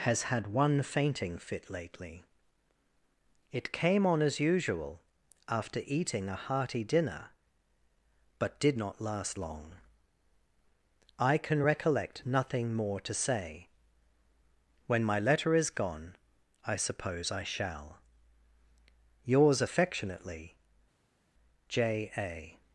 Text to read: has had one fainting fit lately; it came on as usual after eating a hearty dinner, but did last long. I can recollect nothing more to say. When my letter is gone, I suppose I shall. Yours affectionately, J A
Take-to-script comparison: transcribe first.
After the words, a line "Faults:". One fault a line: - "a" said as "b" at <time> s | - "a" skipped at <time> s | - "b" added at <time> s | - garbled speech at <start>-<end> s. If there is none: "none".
has had one fainting fit lately; it came on as usual after eating a hearty dinner, but did not last long. I can recollect nothing more to say. When my letter is gone, I suppose I shall. Yours affectionately, J A
Faults:
- "not" added at 8.8 s